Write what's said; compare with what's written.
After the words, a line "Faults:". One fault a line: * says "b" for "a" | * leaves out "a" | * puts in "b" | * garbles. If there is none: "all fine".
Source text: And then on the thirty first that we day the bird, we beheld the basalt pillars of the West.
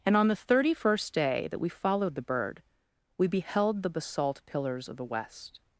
And on the thirty first day that we followed the bird, we beheld the basalt pillars of the West.
Faults:
* leaves out "then"
* puts in "day"
* says "followed" for "day"